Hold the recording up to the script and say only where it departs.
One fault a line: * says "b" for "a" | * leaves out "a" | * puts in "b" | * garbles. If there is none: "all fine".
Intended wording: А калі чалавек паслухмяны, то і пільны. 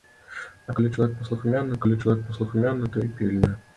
* puts in "калі чалавек паслухмяны"